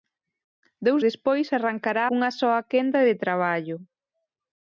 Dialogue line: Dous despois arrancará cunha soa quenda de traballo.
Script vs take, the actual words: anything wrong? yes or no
no